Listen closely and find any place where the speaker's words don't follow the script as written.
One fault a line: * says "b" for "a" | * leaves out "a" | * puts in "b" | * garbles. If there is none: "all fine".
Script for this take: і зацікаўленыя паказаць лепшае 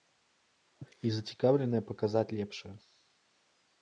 all fine